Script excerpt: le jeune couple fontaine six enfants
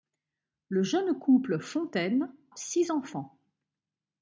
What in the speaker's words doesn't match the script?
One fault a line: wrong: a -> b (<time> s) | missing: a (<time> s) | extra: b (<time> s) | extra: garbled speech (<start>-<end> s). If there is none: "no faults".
no faults